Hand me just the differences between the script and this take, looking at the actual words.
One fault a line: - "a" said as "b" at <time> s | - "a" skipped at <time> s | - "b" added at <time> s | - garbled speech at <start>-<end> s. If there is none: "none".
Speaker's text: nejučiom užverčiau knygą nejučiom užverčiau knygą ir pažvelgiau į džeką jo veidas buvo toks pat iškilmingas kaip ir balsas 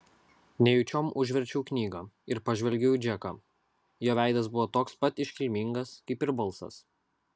- "nejučiom užverčiau knygą" skipped at 2.0 s